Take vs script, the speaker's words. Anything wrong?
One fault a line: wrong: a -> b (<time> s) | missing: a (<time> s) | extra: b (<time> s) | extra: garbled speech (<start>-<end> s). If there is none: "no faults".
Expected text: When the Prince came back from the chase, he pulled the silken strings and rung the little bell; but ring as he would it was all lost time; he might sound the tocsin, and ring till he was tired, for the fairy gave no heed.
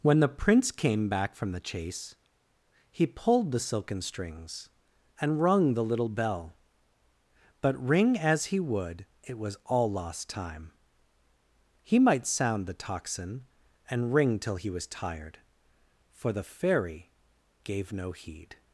no faults